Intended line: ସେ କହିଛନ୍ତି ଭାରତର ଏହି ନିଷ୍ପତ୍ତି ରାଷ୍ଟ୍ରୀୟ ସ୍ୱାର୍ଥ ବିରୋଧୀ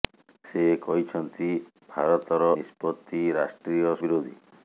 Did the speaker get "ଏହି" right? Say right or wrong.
wrong